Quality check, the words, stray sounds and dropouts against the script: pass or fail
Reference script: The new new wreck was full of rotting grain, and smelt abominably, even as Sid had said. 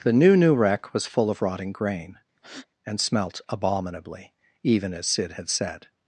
fail